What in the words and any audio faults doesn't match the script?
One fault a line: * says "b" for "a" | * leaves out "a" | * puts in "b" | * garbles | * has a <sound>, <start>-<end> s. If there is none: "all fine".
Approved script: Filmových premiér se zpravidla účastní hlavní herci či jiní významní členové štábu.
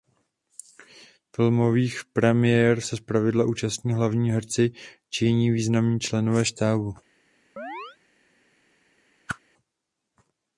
* has a chirp, 7.6-8.0 s
* has a whoosh, 9.3-9.4 s